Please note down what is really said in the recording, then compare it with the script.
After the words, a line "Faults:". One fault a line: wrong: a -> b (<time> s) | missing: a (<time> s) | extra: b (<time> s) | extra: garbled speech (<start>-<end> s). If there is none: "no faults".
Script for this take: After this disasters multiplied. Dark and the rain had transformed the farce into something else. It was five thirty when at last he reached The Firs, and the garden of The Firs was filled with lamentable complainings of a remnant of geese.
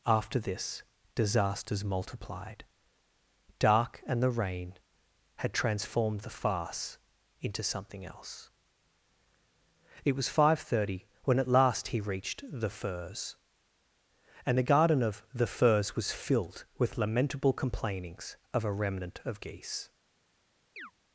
After this disasters multiplied. Dark and the rain had transformed the farce into something else. It was five thirty when at last he reached The Firs, and the garden of The Firs was filled with lamentable complainings of a remnant of geese.
Faults:
no faults